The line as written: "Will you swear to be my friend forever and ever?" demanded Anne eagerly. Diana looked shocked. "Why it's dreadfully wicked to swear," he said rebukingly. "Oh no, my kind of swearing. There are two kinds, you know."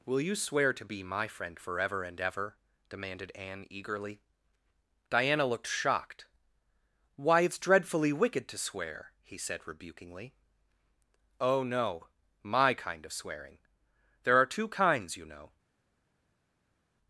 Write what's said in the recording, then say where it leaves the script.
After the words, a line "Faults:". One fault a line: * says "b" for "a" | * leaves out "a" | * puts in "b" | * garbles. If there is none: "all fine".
"Will you swear to be my friend forever and ever?" demanded Anne eagerly. Diana looked shocked. "Why it's dreadfully wicked to swear," he said rebukingly. "Oh no, my kind of swearing. There are two kinds, you know."
Faults:
all fine